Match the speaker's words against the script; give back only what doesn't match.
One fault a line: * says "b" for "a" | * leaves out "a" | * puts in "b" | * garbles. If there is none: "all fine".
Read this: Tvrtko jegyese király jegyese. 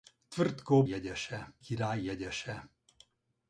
all fine